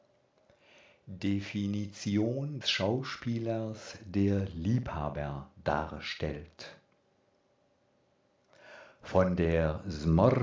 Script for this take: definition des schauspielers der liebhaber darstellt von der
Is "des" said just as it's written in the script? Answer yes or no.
no